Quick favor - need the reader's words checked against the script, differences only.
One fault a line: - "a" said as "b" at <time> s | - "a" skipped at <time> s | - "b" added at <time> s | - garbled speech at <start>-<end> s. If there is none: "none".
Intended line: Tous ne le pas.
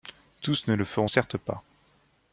- "feront certes" added at 0.8 s